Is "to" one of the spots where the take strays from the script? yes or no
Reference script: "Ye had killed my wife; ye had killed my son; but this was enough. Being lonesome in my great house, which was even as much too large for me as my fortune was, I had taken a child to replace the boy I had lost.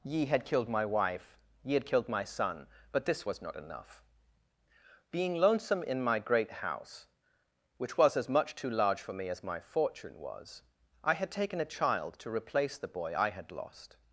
no